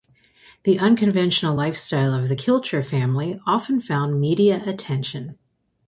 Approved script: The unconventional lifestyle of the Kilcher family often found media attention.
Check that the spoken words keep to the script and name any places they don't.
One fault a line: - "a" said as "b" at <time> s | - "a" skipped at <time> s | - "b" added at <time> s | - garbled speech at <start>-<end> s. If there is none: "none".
none